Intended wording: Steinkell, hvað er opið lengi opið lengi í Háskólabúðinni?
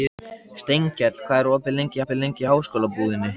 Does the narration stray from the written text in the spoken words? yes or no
no